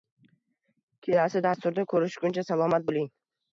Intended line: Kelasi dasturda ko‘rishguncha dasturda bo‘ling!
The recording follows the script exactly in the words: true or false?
false